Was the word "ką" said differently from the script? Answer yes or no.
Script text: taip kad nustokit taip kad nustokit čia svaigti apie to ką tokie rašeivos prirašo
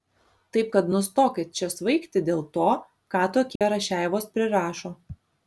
no